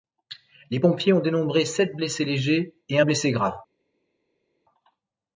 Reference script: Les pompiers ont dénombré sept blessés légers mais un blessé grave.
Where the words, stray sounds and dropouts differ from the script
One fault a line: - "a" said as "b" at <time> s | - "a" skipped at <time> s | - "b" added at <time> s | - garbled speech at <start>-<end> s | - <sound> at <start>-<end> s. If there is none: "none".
- "mais" said as "et" at 2.9 s